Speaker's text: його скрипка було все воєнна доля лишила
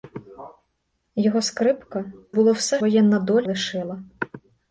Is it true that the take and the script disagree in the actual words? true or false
false